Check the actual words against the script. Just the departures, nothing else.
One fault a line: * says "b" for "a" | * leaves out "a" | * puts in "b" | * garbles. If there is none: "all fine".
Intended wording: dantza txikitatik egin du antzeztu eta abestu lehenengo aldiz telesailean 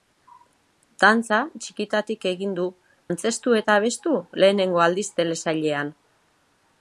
all fine